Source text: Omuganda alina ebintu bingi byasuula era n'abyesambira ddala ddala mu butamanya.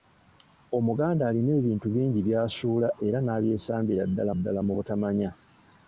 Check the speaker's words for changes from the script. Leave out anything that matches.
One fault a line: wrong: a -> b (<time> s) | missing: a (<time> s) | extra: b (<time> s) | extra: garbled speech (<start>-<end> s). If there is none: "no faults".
no faults